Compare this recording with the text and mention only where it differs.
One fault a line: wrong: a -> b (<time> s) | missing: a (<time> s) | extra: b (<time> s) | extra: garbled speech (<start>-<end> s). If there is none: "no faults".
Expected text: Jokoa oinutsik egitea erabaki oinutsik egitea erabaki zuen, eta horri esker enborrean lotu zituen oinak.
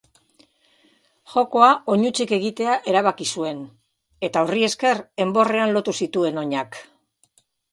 missing: oinutsik egitea erabaki (3.3 s)